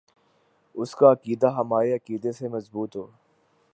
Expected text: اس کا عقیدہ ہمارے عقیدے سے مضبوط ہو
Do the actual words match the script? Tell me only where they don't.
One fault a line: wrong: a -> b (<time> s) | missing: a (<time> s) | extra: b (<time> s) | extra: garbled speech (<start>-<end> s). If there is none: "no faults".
no faults